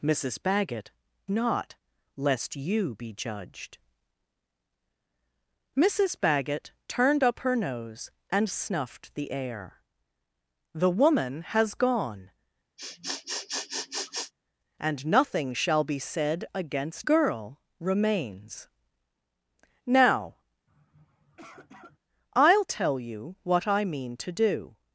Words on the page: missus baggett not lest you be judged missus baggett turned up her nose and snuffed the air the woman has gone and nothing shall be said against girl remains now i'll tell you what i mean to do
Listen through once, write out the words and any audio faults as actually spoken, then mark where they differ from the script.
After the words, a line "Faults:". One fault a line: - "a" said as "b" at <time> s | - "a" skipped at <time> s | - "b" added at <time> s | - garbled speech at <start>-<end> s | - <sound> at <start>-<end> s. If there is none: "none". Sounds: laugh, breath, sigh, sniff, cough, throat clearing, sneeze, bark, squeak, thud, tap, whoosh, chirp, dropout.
missus baggett not lest you be judged missus baggett turned up her nose and snuffed the air the woman has gone and nothing shall be said against girl remains now i'll tell you what i mean to do
Faults:
- sniff at 12.8-14.3 s
- sniff at 20.7-22.0 s